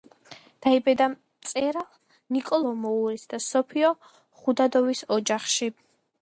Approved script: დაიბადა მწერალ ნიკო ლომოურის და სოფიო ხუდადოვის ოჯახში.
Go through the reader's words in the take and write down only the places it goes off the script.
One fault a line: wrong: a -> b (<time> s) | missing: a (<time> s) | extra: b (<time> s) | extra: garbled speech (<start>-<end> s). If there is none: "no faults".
no faults